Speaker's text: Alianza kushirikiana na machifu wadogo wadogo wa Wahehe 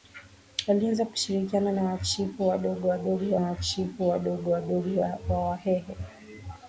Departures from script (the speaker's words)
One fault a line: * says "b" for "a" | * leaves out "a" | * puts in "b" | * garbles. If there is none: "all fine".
* puts in "machifu wadogo wadogo"